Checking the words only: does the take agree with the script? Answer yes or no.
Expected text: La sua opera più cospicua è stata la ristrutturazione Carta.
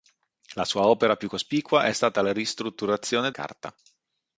yes